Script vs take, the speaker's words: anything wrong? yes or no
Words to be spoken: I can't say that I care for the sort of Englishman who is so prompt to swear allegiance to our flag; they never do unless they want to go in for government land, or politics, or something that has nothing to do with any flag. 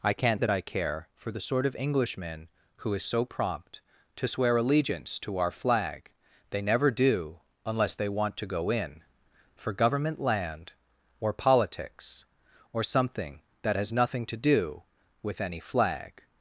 yes